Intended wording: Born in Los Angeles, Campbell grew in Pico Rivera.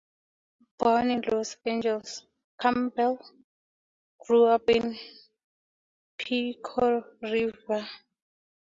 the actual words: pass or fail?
fail